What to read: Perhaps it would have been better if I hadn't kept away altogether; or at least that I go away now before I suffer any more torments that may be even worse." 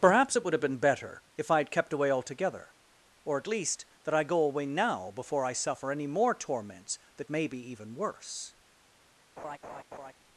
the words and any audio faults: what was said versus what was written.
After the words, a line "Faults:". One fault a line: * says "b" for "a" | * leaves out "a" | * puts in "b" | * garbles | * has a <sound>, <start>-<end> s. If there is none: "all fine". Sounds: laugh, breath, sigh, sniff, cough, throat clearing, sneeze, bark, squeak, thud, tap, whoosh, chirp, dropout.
Perhaps it would have been better if I had kept away altogether; or at least that I go away now before I suffer any more torments that may be even worse."
Faults:
* says "had" for "hadn't"
* has a laugh, 9.4-10.1 s